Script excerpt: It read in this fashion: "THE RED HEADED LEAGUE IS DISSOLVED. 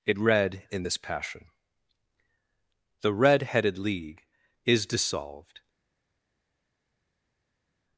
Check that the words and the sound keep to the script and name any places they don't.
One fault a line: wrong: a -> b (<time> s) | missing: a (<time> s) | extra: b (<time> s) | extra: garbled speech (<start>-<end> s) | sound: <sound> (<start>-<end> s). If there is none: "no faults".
wrong: fashion -> passion (1.0 s)